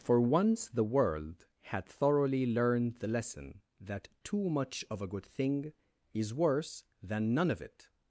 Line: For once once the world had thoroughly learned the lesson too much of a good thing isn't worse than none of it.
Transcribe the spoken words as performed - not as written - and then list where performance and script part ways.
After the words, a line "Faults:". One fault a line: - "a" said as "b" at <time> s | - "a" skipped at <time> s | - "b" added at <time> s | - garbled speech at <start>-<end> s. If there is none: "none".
For once the world had thoroughly learned the lesson that too much of a good thing is worse than none of it.
Faults:
- "once" skipped at 0.7 s
- "that" added at 3.8 s
- "isn't" said as "is" at 6.1 s